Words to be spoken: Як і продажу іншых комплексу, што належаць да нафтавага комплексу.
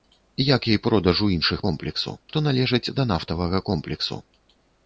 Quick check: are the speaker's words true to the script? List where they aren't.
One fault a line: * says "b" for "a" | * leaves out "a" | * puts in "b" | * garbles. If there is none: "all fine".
all fine